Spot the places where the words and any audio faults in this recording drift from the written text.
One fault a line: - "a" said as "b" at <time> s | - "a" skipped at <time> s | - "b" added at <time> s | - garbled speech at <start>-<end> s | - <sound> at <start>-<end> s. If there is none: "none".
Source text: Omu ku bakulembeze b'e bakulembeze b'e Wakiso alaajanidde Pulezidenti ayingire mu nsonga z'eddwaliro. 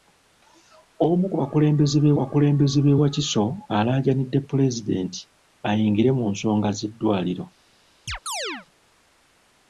- chirp at 8.1-8.7 s